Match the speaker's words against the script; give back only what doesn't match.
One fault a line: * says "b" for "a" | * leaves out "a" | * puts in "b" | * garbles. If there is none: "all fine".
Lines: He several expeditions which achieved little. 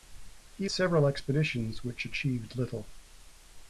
all fine